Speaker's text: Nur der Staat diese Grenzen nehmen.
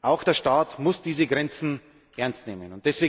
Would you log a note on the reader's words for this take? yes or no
yes